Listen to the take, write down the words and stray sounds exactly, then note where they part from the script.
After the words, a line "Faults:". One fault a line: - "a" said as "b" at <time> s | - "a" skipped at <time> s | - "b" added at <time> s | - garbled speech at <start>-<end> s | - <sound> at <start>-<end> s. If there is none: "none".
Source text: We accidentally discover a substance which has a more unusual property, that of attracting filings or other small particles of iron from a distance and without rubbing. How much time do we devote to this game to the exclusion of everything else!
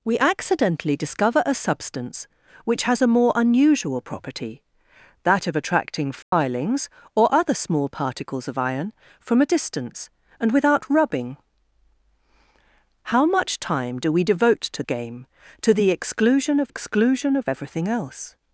We accidentally discover a substance which has a more unusual property, that of attracting filings or other small particles of iron from a distance and without rubbing. How much time do we devote to game to the exclusion of exclusion of everything else!
Faults:
- dropout at 6.2-6.3 s
- "this" skipped at 14.8 s
- "exclusion of" added at 16.7 s